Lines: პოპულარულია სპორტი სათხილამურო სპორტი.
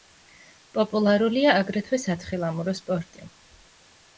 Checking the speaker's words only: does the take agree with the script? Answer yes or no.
no